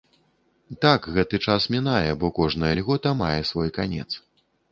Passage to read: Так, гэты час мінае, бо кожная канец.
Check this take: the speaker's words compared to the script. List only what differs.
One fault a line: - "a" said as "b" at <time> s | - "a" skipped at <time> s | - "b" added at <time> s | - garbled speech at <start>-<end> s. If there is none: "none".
- "льгота мае свой" added at 2.8 s